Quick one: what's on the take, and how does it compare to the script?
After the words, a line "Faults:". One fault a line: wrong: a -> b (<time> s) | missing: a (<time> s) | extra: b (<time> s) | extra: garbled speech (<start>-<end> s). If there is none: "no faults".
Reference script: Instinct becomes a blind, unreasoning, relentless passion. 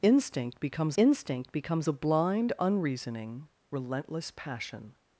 Instinct becomes instinct becomes a blind, unreasoning, relentless passion.
Faults:
extra: instinct becomes (1.0 s)